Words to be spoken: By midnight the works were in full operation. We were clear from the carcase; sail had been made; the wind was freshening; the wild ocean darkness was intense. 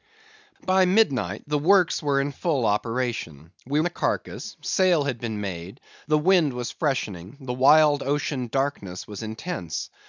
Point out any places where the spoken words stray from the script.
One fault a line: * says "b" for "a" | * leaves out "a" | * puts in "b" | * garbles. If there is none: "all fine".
* leaves out "were clear from"